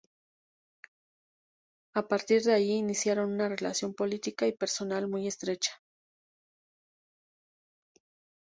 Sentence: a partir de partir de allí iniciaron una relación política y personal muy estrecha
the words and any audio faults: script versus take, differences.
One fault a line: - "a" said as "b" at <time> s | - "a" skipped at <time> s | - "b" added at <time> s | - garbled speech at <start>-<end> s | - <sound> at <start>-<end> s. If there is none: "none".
- "partir de" skipped at 2.5 s